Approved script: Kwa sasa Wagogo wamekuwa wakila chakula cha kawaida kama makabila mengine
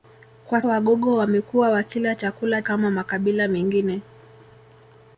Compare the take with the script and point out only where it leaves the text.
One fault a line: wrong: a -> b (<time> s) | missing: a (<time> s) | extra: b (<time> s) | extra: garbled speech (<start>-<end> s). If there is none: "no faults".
missing: sasa (0.6 s)
missing: cha kawaida (2.6 s)